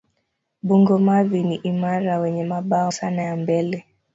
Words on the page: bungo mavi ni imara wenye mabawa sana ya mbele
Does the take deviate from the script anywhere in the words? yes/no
no